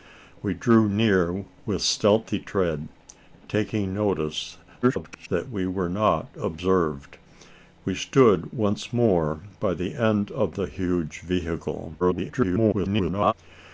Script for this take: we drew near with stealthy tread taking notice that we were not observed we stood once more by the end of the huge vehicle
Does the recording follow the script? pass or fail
fail